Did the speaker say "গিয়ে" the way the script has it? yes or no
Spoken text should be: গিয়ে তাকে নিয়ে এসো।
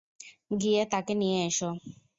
yes